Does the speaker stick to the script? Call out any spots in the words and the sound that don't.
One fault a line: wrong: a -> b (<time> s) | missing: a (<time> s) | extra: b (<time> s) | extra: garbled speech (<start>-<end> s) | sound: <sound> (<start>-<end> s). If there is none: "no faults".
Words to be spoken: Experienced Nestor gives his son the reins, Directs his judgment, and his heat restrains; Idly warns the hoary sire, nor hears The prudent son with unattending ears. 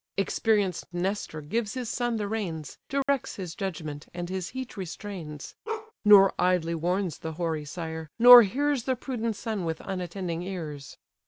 sound: dropout (3.0-3.1 s)
sound: bark (5.7-5.9 s)
extra: Nor (6.0 s)